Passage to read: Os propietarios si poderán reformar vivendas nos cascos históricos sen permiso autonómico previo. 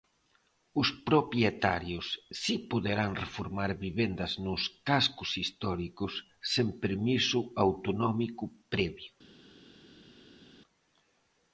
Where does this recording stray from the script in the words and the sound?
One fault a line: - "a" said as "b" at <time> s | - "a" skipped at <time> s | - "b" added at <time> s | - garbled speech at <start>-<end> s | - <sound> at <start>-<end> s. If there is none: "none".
none